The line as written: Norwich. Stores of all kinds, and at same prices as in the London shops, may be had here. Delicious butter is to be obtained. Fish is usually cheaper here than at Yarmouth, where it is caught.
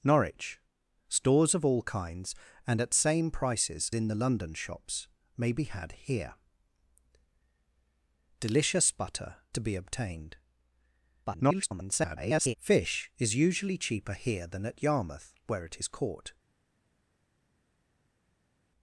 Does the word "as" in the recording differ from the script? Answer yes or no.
yes